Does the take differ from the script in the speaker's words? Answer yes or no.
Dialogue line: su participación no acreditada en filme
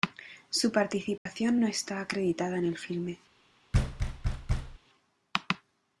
yes